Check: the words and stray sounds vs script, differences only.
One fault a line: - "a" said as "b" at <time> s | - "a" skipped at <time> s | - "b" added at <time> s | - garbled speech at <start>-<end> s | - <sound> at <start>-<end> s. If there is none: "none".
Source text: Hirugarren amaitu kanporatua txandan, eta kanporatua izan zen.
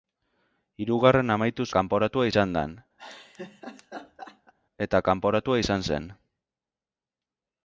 - laugh at 3.0-4.5 s